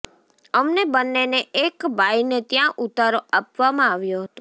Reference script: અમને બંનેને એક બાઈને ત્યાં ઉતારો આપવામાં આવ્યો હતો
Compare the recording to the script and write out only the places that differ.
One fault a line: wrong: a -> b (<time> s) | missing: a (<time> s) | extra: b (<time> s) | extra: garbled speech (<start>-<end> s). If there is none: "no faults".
no faults